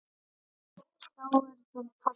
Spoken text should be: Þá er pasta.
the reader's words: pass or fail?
fail